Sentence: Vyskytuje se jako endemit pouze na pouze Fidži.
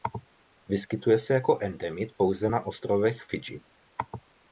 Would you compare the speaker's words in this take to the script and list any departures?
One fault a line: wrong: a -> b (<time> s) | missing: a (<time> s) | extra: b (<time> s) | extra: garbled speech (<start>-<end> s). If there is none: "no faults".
wrong: pouze -> ostrovech (2.7 s)